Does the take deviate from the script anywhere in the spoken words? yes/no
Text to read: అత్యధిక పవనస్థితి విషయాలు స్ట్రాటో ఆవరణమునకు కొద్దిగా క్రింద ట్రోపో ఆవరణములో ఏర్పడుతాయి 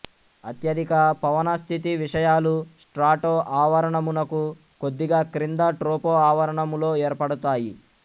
no